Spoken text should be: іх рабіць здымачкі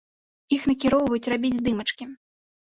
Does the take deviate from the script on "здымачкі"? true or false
false